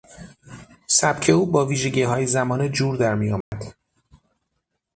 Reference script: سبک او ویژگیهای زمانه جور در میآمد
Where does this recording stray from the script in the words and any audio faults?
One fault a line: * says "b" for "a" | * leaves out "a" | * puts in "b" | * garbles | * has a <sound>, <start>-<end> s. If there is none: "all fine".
* puts in "با"
* has a dropout, 3.4-3.5 s